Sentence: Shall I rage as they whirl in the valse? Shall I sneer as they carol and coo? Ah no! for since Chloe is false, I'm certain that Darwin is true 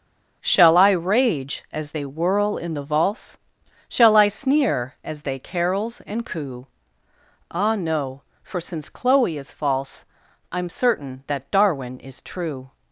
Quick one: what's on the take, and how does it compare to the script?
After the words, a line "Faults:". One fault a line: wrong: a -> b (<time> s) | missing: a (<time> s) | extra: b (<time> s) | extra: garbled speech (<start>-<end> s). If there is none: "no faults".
Shall I rage as they whirl in the valse? Shall I sneer as they carols and coo? Ah no! for since Chloe is false, I'm certain that Darwin is true
Faults:
wrong: carol -> carols (5.4 s)